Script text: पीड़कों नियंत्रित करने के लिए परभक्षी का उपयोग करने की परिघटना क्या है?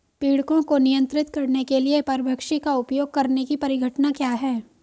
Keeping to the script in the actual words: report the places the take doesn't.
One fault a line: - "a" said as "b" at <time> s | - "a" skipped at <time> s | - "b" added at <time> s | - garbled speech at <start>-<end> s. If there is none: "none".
- "को" added at 0.6 s